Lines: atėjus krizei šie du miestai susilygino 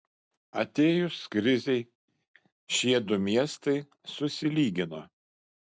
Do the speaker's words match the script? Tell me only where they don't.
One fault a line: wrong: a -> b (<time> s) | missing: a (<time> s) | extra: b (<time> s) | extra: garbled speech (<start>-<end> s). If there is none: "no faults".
no faults